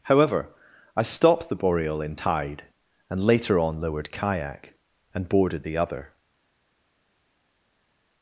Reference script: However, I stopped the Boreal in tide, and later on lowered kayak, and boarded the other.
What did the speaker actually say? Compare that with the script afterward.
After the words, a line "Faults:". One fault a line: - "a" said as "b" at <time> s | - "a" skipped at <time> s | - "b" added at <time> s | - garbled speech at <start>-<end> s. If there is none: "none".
However, I stopped the Boreal in tide, and later on lowered kayak, and boarded the other.
Faults:
none